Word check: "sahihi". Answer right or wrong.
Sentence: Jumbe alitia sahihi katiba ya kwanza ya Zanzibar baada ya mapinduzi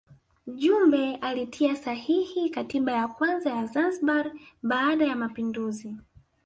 right